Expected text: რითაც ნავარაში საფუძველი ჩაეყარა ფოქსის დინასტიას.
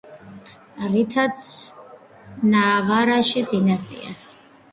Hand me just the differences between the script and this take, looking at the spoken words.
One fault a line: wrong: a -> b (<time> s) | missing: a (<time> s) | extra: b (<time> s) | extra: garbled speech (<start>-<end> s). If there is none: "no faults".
missing: საფუძველი ჩაეყარა ფოქსის (3.5 s)